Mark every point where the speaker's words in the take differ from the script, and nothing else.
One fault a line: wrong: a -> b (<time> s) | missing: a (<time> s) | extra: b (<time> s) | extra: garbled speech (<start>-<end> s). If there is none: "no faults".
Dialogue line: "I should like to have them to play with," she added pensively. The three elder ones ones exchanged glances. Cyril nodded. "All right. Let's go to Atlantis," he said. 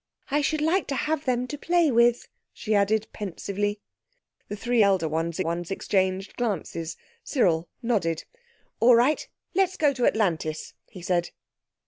no faults